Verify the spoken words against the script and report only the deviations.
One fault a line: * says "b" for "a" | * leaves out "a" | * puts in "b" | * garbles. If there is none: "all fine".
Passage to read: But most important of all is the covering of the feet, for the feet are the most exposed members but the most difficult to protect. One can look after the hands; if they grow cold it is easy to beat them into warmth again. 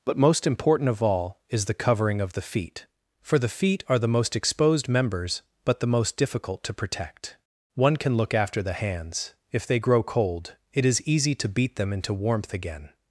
all fine